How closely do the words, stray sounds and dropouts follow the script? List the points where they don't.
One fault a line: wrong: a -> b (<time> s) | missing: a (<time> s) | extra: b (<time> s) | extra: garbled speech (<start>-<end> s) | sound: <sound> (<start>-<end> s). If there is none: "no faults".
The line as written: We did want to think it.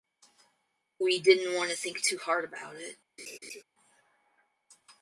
wrong: did -> didn't (1.2 s)
extra: too hard about (2.0 s)
sound: laugh (3.2-3.6 s)